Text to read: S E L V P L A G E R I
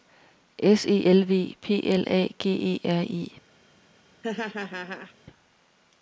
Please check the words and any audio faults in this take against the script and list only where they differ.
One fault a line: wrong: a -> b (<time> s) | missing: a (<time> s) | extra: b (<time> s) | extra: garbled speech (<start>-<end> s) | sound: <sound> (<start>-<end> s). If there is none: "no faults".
sound: laugh (4.2-5.1 s)